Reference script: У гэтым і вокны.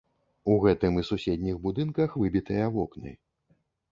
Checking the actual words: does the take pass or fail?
fail